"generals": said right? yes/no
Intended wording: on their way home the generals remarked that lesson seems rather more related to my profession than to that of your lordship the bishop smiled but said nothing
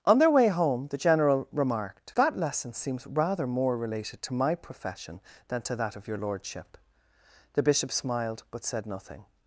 no